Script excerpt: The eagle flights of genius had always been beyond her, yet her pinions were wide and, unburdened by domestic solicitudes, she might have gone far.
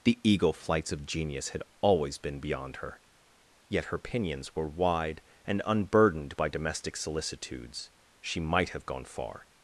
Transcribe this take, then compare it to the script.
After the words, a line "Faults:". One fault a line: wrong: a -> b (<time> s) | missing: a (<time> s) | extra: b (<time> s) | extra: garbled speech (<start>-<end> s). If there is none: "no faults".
The eagle flights of genius had always been beyond her, yet her pinions were wide and, unburdened by domestic solicitudes, she might have gone far.
Faults:
no faults